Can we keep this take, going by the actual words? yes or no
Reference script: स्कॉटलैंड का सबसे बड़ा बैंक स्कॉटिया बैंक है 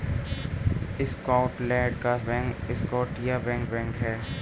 no